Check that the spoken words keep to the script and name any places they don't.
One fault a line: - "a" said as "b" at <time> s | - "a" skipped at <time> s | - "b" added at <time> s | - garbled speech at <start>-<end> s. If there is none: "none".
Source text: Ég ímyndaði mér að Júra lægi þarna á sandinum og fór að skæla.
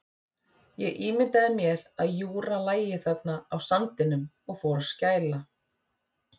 none